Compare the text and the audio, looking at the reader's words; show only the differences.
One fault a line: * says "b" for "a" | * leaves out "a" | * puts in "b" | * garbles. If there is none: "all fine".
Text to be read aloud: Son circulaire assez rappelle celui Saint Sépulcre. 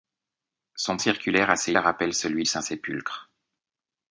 all fine